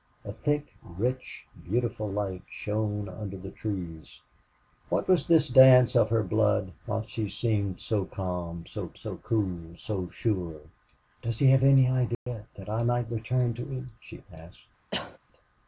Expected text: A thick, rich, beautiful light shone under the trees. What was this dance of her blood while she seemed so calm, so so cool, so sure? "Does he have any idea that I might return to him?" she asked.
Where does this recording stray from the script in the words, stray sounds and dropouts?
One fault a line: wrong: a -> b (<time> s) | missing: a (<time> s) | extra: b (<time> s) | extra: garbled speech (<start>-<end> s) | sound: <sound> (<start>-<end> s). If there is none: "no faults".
sound: dropout (12.1-12.3 s)
sound: cough (14.9-15.2 s)